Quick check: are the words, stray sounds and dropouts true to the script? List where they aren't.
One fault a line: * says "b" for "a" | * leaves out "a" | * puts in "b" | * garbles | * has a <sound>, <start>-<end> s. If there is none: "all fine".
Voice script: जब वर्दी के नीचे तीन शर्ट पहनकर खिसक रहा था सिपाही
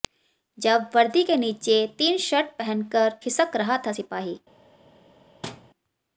* has a thud, 5.4-5.7 s